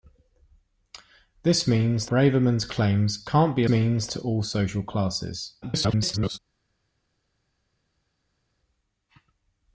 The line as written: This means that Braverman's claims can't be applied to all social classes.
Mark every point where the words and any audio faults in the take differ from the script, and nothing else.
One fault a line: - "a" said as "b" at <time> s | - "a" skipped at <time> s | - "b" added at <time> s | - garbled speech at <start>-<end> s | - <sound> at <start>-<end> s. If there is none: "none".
- "that" skipped at 2.1 s
- "applied" said as "means" at 3.7 s
- garbled speech at 5.6-6.4 s